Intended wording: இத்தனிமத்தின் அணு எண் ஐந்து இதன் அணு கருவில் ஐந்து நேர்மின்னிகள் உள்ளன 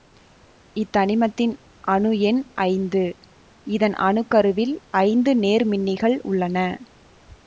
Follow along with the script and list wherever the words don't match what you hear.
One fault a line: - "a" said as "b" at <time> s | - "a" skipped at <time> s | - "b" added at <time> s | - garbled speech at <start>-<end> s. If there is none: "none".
none